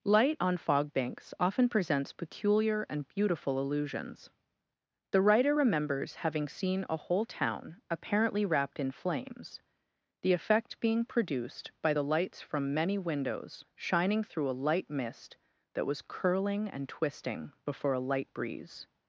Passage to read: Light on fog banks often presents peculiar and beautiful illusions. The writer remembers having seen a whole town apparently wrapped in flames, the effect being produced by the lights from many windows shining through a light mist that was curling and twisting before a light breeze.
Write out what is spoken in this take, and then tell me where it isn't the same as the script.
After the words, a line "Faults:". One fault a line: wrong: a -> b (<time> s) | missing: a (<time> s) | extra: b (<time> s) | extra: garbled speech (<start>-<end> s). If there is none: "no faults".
Light on fog banks often presents peculiar and beautiful illusions. The writer remembers having seen a whole town apparently wrapped in flames, the effect being produced by the lights from many windows shining through a light mist that was curling and twisting before a light breeze.
Faults:
no faults